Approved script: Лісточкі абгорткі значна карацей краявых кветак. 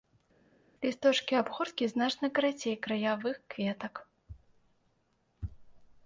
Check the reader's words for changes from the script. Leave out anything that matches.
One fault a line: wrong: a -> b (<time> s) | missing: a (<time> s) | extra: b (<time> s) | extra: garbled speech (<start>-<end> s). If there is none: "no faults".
no faults